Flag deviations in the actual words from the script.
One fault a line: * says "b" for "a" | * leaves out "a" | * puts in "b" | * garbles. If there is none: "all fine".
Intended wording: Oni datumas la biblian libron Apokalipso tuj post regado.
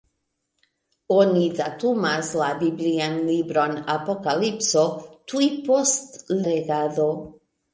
all fine